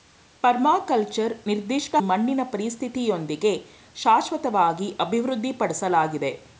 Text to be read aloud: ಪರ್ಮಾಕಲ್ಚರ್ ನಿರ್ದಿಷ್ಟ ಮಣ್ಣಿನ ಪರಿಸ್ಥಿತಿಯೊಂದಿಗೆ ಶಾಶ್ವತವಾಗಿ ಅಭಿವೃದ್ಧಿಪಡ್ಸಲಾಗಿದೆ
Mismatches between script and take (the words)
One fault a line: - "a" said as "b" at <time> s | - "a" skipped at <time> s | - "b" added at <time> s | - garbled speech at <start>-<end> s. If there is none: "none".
none